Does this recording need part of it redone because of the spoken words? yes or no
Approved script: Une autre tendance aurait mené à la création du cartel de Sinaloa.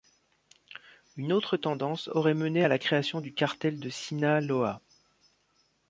no